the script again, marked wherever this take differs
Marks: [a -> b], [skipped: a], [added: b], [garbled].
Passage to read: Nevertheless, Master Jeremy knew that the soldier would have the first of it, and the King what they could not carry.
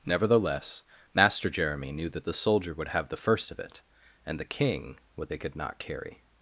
Nevertheless, Master Jeremy knew that the soldier would have the first of it, and the King what they could not carry.